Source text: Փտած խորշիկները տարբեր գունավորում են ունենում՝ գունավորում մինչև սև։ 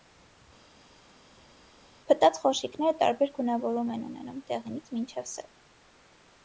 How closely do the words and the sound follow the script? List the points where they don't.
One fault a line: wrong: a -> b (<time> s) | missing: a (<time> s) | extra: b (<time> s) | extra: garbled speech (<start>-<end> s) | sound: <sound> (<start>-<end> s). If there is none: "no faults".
wrong: գունավորում -> դեղինից (4.5 s)